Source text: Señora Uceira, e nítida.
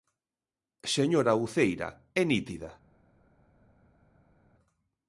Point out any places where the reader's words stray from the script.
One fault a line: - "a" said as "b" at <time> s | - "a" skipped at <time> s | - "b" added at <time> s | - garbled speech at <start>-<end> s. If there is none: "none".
none